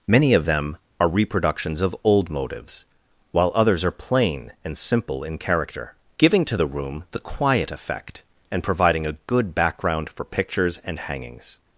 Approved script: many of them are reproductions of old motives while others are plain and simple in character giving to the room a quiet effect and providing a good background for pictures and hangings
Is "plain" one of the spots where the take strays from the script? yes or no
no